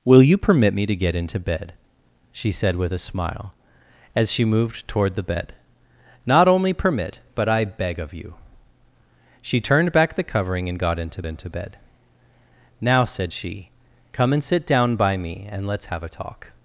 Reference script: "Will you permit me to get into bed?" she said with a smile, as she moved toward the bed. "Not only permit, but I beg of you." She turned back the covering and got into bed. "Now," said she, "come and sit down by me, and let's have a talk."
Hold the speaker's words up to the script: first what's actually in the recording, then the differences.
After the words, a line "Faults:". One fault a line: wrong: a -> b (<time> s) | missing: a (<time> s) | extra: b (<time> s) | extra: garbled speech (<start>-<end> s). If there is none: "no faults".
"Will you permit me to get into bed?" she said with a smile, as she moved toward the bed. "Not only permit, but I beg of you." She turned back the covering and got into into bed. "Now," said she, "come and sit down by me, and let's have a talk."
Faults:
extra: into (11.3 s)